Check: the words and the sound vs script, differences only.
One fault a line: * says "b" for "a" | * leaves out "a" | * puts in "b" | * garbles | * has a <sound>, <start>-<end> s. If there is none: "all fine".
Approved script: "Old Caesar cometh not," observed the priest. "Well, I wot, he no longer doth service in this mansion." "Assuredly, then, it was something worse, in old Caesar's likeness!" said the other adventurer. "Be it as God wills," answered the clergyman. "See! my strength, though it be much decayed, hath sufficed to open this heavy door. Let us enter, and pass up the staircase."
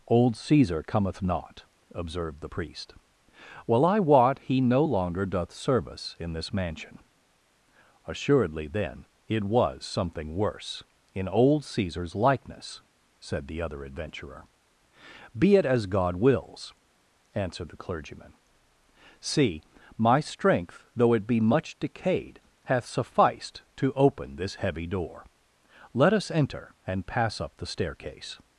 all fine